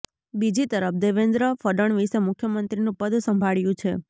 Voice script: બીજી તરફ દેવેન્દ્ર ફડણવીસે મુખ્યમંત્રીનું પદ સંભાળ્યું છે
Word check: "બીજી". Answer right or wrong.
right